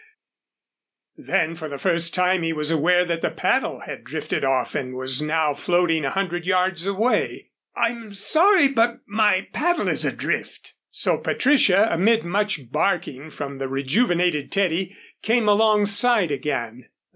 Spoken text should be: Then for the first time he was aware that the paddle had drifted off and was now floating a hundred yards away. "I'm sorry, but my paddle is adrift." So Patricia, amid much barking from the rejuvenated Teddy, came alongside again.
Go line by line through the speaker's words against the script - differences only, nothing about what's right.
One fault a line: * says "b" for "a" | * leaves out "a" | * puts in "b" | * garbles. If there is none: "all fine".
all fine